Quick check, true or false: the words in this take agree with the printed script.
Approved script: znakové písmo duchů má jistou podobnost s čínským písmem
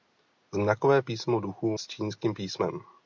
false